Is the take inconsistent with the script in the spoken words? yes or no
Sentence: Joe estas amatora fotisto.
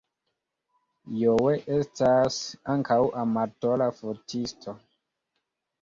yes